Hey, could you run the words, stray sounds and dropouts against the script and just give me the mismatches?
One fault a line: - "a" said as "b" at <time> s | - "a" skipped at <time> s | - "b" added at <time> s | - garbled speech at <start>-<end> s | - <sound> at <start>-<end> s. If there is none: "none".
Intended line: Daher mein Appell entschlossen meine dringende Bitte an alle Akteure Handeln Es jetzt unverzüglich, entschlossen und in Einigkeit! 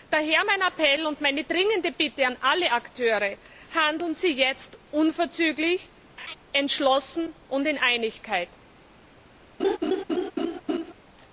- "entschlossen" said as "und" at 1.0 s
- "Es" said as "Sie" at 4.1 s
- laugh at 6.2-6.4 s
- laugh at 9.6-10.9 s